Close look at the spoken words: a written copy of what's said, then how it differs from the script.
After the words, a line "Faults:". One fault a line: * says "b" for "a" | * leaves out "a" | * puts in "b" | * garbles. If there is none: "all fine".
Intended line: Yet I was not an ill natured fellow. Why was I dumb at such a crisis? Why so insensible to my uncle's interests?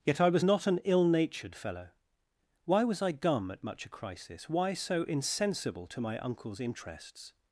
Yet I was not an ill natured fellow. Why was I dumb at much a crisis? Why so insensible to my uncle's interests?
Faults:
* says "much" for "such"